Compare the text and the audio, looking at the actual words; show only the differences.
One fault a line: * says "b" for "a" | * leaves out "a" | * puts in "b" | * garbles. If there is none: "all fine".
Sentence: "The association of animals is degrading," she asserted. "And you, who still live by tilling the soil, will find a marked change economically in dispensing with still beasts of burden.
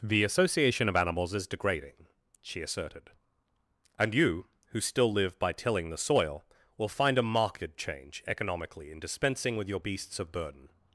* says "your" for "still"